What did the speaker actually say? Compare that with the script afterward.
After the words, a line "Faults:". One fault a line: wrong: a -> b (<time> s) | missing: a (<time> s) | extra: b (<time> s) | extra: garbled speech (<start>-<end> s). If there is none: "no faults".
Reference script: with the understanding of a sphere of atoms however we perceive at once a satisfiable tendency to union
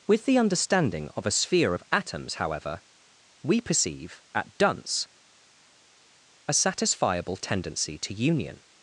with the understanding of a sphere of atoms however we perceive at dunce a satisfiable tendency to union
Faults:
wrong: once -> dunce (4.6 s)